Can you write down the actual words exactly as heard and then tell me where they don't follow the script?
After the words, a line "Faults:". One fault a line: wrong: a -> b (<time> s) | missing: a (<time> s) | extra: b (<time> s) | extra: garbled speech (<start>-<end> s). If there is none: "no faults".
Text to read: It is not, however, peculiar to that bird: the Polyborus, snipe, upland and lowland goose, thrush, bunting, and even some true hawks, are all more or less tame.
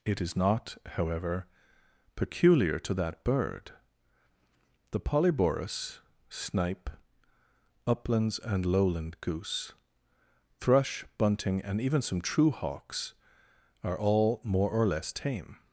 It is not, however, peculiar to that bird: the Polyborus, snipe, uplands and lowland goose, thrush, bunting, and even some true hawks, are all more or less tame.
Faults:
wrong: upland -> uplands (7.9 s)